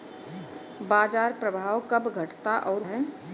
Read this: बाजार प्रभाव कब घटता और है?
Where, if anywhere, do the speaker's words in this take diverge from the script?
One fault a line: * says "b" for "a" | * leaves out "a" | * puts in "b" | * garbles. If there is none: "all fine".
all fine